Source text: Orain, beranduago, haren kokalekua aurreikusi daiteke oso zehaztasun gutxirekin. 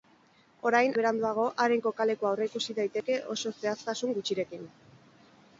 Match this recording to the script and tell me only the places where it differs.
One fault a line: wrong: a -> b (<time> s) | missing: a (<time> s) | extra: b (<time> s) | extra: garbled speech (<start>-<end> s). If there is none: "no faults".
no faults